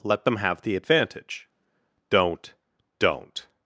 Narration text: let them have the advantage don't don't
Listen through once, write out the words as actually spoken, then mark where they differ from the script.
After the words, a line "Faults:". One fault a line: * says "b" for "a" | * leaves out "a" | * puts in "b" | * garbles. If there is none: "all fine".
let them have the advantage don't don't
Faults:
all fine